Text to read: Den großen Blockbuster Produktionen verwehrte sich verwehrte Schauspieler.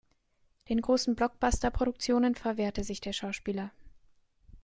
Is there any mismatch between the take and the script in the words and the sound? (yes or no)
yes